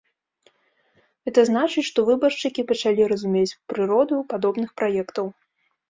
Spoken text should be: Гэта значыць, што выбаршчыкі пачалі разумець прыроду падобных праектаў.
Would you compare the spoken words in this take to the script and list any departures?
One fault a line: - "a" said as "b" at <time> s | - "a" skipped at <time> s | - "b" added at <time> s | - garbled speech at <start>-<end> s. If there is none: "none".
none